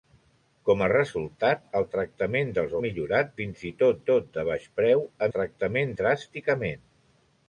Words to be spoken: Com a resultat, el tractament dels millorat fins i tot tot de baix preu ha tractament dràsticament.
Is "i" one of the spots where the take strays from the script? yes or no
no